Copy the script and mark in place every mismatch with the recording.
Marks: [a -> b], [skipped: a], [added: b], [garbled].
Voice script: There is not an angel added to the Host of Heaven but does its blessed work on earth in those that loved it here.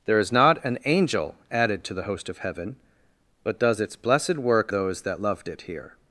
There is not an angel added to the Host of Heaven but does its blessed work [skipped: on earth in] those that loved it here.